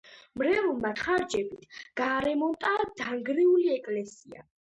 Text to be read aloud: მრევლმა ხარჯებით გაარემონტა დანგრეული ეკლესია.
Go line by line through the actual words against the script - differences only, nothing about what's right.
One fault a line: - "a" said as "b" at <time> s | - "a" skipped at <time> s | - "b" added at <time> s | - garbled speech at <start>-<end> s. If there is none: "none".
none